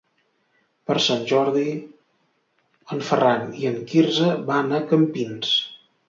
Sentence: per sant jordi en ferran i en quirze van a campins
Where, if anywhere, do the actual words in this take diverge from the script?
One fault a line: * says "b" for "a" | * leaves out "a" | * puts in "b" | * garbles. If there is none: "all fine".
all fine